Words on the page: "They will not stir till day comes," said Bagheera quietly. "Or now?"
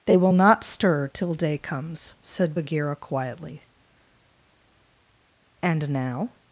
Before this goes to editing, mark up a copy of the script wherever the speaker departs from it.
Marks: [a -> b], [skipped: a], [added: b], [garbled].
"They will not stir till day comes," said Bagheera quietly. ["Or -> And] now?"